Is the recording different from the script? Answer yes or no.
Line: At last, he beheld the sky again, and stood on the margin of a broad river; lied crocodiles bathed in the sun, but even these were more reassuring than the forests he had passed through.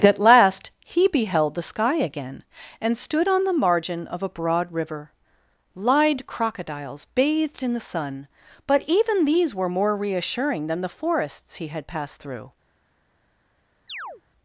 no